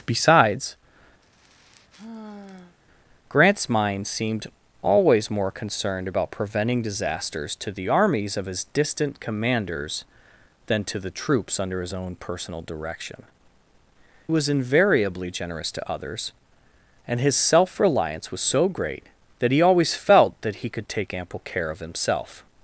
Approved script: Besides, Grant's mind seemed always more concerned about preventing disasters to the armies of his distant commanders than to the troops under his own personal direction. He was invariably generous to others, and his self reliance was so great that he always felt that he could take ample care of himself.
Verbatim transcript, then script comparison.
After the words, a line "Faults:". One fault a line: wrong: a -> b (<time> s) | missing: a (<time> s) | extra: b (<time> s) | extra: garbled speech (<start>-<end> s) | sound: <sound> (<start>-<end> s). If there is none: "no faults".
Besides, Grant's mind seemed always more concerned about preventing disasters to the armies of his distant commanders than to the troops under his own personal direction. Was invariably generous to others, and his self reliance was so great that he always felt that he could take ample care of himself.
Faults:
sound: sigh (1.2-2.8 s)
missing: He (13.2 s)